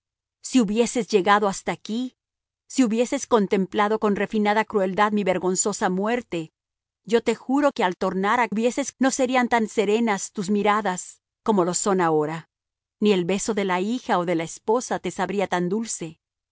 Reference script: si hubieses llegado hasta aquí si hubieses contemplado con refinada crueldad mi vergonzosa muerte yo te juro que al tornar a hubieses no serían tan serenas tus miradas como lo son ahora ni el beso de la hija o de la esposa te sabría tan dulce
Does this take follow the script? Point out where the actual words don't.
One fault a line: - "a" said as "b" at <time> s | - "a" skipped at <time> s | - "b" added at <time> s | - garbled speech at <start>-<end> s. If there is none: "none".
none